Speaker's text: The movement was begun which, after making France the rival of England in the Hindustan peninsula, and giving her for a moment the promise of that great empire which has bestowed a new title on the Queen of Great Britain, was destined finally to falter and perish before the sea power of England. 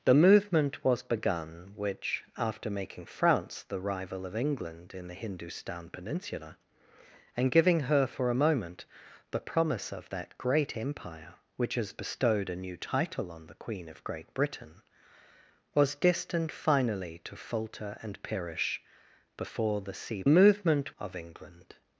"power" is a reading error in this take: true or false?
true